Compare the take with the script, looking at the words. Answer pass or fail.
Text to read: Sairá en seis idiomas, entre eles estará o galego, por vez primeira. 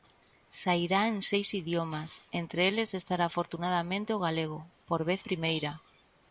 fail